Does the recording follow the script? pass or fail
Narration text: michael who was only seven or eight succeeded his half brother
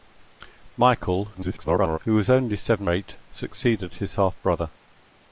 fail